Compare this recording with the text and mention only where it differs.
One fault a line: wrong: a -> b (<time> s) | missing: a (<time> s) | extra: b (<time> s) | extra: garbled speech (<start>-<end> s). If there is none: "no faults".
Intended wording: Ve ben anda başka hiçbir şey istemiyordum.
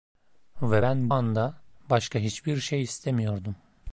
no faults